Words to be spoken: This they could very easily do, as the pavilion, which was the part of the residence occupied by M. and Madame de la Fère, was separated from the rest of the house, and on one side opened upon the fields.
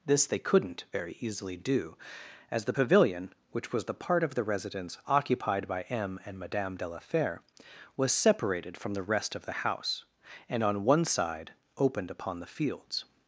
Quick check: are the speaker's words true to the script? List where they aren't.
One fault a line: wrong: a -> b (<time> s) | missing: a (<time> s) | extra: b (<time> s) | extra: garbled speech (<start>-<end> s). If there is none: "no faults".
wrong: could -> couldn't (0.4 s)